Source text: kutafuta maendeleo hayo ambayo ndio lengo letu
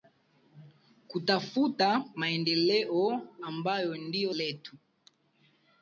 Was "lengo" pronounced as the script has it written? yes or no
no